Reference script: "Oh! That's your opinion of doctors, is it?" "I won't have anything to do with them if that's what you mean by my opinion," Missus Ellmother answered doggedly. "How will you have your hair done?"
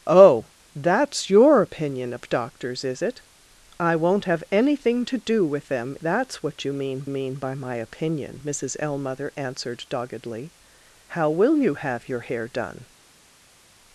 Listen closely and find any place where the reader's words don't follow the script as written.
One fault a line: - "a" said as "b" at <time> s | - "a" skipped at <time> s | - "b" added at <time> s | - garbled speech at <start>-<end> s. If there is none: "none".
- "if" skipped at 6.0 s
- "mean" added at 7.1 s